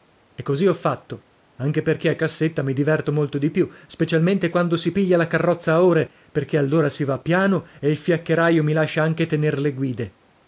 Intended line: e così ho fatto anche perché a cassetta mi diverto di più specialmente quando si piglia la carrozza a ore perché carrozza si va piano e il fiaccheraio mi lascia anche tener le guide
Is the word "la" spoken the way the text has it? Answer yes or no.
yes